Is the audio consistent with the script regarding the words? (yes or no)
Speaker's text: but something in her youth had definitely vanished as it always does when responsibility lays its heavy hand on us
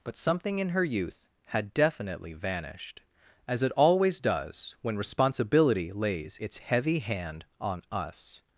yes